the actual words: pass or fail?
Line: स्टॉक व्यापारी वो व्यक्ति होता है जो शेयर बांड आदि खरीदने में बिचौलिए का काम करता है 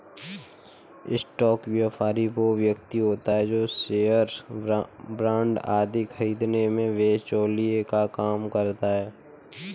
pass